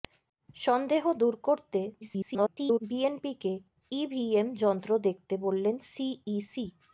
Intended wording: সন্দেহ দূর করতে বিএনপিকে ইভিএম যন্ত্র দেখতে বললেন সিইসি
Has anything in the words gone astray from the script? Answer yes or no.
yes